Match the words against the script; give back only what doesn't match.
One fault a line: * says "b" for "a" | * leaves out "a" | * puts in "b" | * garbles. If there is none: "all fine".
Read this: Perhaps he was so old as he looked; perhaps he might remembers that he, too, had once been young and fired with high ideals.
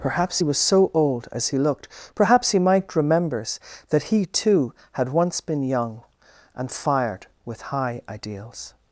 all fine